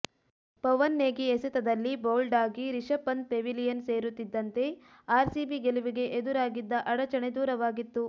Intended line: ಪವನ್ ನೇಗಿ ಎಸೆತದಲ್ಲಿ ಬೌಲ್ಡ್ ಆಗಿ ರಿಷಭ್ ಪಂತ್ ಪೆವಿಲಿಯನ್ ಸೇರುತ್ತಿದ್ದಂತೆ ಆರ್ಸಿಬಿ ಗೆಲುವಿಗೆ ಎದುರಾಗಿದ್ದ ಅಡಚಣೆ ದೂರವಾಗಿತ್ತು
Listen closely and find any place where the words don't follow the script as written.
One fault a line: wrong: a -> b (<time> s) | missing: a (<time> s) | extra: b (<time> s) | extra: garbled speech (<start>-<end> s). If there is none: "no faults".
no faults